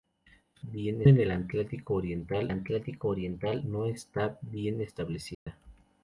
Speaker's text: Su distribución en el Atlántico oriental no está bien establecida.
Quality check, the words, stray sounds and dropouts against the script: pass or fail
fail